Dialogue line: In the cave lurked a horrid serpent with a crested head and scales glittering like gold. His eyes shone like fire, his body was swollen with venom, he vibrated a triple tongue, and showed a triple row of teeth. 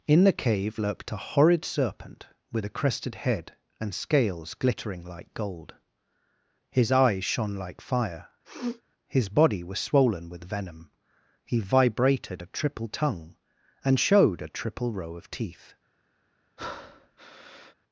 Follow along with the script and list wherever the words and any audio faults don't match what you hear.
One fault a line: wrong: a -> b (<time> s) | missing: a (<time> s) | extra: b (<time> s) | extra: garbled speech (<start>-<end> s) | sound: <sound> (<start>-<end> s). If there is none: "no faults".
sound: sniff (8.4-8.8 s)
sound: breath (16.6-17.7 s)